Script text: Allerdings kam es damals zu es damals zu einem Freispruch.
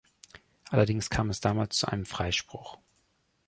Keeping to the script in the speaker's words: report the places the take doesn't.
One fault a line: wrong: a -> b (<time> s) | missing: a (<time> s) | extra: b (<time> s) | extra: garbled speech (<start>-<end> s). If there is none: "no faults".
missing: es damals zu (1.9 s)